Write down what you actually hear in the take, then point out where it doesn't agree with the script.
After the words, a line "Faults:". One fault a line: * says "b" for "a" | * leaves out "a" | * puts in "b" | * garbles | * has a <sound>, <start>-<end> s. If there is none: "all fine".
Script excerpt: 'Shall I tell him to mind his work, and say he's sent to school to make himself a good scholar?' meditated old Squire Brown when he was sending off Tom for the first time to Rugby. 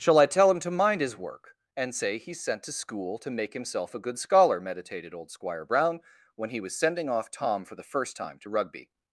'Shall I tell him to mind his work, and say he's sent to school to make himself a good scholar?' meditated old Squire Brown when he was sending off Tom for the first time to Rugby.
Faults:
all fine